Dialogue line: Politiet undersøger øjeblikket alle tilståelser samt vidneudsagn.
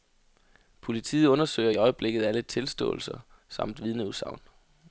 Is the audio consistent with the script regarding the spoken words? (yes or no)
yes